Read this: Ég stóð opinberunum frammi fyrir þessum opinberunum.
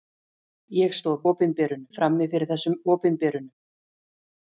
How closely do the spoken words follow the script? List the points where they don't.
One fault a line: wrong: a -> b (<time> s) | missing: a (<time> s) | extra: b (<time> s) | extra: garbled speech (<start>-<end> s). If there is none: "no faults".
no faults